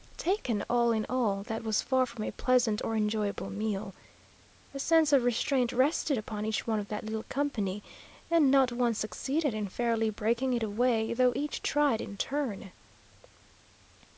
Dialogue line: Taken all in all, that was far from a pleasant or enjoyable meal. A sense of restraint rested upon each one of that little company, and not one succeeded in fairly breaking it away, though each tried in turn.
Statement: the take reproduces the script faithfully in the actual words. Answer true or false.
true